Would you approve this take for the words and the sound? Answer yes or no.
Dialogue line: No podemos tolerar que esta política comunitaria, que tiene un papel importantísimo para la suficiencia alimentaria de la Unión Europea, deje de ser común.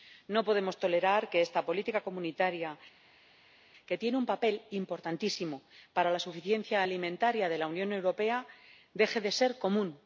yes